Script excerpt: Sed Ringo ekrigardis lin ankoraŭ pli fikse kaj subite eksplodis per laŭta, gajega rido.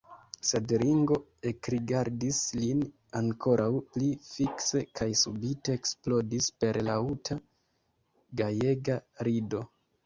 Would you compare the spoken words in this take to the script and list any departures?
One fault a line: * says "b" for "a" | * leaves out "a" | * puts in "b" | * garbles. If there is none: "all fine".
all fine